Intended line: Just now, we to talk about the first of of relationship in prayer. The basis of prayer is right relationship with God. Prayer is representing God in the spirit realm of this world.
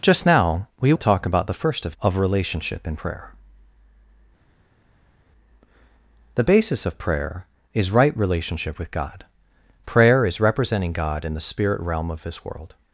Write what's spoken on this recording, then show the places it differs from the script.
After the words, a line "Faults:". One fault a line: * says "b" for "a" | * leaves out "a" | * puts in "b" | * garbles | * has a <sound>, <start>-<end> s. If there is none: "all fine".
Just now, we to talk about the first of of relationship in prayer. The basis of prayer is right relationship with God. Prayer is representing God in the spirit realm of this world.
Faults:
all fine